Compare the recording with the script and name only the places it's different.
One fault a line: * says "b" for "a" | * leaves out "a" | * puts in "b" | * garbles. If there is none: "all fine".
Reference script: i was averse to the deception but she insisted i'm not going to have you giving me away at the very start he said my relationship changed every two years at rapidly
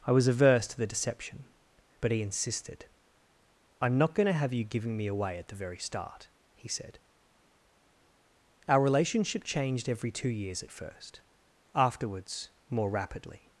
* says "he" for "she"
* says "our" for "my"
* puts in "first afterwards more"